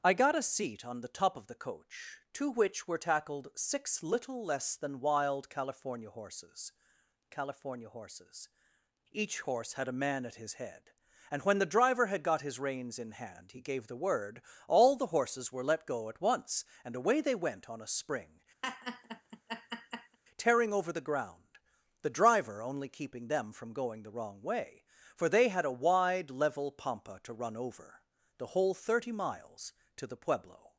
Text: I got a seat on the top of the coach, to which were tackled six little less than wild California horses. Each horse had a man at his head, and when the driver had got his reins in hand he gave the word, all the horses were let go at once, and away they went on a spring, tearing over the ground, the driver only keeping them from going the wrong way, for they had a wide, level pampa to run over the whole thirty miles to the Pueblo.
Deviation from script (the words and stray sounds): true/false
true